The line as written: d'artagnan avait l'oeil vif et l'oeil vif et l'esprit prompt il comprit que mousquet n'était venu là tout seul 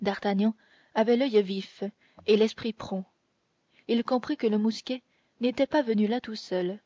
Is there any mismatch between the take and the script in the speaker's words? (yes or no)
yes